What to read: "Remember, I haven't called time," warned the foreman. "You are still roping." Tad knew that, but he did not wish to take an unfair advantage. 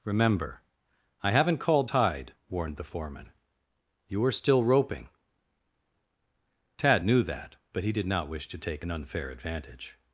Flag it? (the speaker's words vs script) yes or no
yes